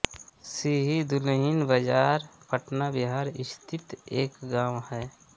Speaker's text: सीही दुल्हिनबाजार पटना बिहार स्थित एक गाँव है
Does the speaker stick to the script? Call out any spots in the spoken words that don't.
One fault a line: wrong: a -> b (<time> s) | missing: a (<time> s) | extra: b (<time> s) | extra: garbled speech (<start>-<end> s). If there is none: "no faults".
no faults